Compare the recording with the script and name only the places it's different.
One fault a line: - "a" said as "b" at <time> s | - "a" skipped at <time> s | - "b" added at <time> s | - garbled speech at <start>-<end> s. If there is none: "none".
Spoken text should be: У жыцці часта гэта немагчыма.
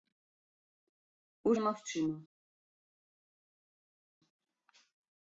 - "жыцці часта гэта" skipped at 1.6 s